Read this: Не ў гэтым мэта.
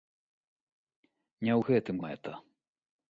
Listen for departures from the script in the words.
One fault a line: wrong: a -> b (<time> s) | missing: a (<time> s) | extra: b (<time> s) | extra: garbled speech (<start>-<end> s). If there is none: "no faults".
no faults